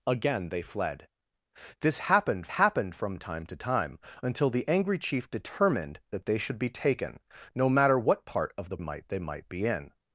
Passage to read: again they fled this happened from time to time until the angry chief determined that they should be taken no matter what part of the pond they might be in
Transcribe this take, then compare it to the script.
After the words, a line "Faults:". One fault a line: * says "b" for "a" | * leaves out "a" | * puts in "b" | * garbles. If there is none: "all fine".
again they fled this happened happened from time to time until the angry chief determined that they should be taken no matter what part of the might they might be in
Faults:
* puts in "happened"
* says "might" for "pond"